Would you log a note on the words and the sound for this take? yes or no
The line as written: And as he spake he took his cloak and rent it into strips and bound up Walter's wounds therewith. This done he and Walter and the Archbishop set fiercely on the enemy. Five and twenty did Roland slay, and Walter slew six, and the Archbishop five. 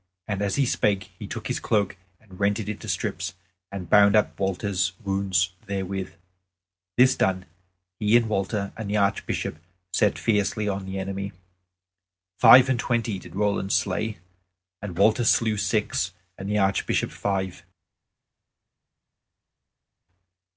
no